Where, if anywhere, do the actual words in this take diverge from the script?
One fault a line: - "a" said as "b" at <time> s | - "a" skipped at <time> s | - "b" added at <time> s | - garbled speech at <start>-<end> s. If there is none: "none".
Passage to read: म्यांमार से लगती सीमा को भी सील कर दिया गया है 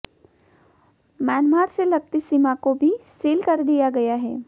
none